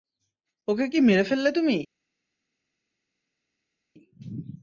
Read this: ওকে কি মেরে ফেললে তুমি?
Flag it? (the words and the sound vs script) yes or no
no